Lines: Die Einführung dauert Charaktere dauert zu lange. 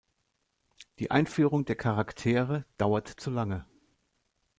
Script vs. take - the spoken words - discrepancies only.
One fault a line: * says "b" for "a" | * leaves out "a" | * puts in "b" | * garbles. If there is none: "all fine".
* says "der" for "dauert"